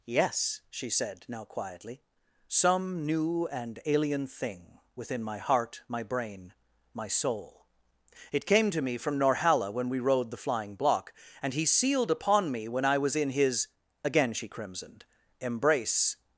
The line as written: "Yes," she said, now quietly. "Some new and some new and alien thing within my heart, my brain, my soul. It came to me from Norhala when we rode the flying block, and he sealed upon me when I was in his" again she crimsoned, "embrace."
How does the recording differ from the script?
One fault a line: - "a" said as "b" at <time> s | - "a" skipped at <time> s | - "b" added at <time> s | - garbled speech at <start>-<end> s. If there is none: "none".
- "some new and" skipped at 3.8 s